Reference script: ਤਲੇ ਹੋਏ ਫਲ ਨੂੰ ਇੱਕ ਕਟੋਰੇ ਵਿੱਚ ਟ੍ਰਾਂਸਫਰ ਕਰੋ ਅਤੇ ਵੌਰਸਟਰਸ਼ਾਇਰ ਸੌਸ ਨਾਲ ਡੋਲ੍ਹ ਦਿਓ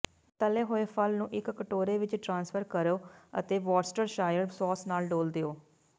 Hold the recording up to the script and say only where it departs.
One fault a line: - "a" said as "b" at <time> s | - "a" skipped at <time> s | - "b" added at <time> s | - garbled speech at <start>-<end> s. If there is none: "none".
none